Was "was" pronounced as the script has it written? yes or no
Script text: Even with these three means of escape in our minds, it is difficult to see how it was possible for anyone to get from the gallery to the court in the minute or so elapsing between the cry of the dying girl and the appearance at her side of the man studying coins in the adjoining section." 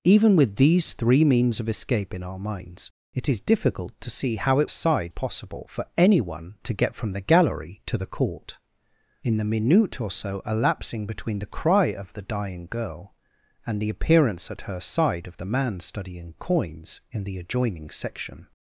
no